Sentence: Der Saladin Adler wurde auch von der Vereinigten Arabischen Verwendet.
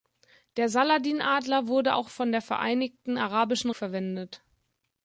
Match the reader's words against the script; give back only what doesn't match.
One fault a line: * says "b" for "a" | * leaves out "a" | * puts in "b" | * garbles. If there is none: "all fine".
all fine